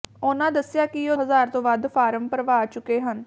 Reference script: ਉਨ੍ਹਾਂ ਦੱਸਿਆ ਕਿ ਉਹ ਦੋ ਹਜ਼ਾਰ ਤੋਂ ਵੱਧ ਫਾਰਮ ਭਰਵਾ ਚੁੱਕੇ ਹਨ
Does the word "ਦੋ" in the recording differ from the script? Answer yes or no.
yes